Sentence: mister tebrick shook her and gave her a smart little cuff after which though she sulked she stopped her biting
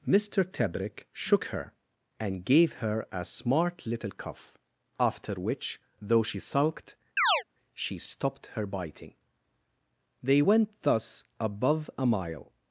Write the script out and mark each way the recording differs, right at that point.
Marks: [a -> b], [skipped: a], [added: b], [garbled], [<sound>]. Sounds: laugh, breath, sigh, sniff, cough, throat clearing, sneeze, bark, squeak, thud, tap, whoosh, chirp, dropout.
mister tebrick shook her and gave her a smart little cuff after which though she sulked [chirp] she stopped her biting [added: they went thus above a mile]